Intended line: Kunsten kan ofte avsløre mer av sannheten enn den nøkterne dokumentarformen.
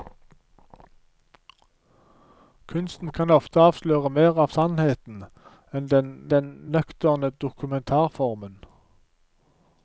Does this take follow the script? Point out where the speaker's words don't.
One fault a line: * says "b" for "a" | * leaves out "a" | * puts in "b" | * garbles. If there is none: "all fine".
* puts in "den"